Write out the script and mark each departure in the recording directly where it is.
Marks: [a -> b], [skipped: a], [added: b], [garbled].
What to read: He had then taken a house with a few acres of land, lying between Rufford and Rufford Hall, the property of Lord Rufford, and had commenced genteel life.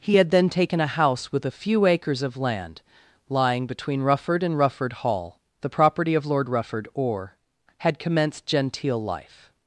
He had then taken a house with a few acres of land, lying between Rufford and Rufford Hall, the property of Lord Rufford, [and -> or] had commenced genteel life.